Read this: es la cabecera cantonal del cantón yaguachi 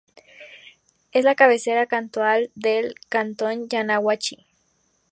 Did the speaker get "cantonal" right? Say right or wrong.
right